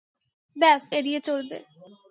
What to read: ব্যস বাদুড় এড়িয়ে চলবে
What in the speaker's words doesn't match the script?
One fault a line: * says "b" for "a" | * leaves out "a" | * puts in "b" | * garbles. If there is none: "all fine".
* leaves out "বাদুড়"